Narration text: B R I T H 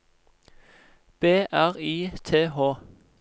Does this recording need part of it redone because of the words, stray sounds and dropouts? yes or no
no